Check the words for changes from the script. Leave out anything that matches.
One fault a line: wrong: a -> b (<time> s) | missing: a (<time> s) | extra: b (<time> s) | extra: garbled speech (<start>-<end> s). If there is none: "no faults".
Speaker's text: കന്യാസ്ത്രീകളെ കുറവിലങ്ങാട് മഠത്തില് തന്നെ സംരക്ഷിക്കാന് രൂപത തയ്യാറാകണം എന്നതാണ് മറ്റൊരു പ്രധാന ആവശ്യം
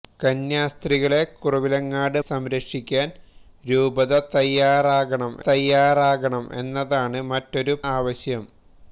missing: മഠത്തില് തന്നെ (2.2 s)
extra: തയ്യാറാകണം (5.5 s)
missing: പ്രധാന (7.7 s)